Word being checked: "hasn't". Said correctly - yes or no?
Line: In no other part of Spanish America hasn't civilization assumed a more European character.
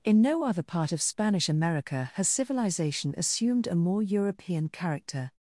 no